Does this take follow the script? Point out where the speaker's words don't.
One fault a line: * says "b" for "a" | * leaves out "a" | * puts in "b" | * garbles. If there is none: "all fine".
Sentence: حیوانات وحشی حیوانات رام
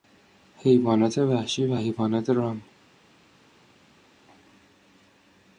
* puts in "و"